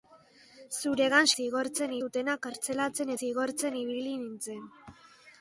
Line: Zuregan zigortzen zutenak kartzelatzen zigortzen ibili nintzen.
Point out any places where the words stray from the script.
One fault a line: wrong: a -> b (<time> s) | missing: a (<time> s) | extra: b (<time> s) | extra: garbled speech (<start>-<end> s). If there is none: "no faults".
no faults